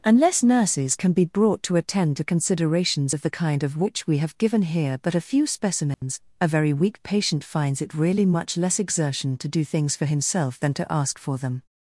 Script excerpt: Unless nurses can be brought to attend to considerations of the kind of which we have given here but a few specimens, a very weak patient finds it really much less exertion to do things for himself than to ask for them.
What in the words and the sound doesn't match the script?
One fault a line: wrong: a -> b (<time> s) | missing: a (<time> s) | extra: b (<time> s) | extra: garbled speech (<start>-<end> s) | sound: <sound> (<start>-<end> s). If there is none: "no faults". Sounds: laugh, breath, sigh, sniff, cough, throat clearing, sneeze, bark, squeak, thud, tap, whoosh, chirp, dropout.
sound: dropout (5.9-6.0 s)